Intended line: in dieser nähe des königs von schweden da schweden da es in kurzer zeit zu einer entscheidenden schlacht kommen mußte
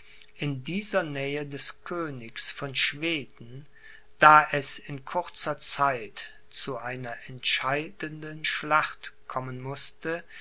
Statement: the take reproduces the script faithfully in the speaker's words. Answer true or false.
false